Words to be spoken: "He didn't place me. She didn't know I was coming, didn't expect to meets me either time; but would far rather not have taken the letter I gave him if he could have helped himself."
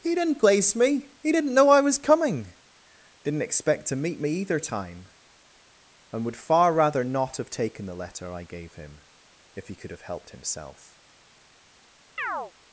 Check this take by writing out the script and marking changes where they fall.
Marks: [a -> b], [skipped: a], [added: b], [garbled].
"He didn't place me. [She -> He] didn't know I was coming, didn't expect to [meets -> meet] me either time; [but -> and] would far rather not have taken the letter I gave him if he could have helped himself."